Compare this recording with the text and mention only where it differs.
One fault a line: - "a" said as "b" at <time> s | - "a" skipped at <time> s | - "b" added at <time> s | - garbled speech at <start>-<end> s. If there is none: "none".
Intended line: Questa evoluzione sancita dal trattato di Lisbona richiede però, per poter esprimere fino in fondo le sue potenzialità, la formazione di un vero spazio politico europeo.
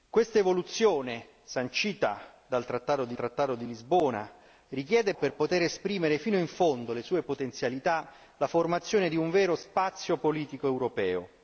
- "trattato di" added at 3.1 s
- "però" skipped at 5.1 s